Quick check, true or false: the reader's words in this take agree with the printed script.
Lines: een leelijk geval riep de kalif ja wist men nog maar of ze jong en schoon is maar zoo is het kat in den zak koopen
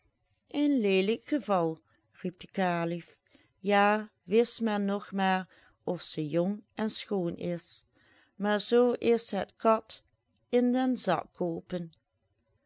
true